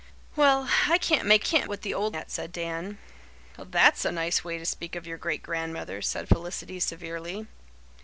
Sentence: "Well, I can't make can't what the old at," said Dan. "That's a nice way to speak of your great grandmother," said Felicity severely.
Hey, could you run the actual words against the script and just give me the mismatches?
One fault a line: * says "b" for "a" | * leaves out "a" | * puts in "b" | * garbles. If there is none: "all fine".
all fine